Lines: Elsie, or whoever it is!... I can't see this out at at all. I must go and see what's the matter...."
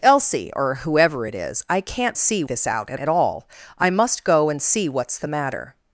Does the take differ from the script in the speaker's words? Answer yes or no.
no